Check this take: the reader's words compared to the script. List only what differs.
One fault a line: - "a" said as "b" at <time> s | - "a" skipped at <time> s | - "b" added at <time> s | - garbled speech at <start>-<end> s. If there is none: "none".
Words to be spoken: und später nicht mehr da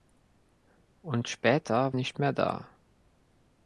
none